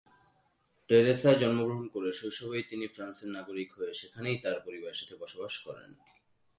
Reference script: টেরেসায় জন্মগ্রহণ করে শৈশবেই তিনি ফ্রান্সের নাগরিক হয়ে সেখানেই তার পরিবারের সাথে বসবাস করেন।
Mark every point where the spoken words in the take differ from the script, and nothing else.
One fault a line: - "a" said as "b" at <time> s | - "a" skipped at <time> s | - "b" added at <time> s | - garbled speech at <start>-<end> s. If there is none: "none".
none